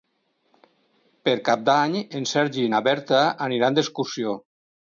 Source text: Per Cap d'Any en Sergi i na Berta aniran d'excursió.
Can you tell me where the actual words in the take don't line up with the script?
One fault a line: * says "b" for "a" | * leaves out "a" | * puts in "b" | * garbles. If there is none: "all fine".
all fine